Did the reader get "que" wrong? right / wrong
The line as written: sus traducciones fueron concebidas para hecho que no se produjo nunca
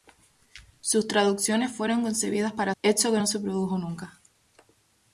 right